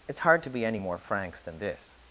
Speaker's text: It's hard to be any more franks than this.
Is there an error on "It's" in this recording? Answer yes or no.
no